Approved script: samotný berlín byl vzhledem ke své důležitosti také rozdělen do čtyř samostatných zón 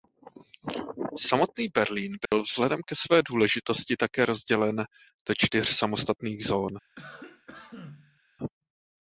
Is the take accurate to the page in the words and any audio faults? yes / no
no